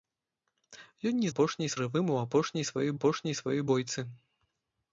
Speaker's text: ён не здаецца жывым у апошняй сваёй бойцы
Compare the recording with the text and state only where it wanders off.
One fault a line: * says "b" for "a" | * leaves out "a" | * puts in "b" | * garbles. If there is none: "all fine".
* says "апошняй" for "здаецца"
* puts in "апошняй сваёй"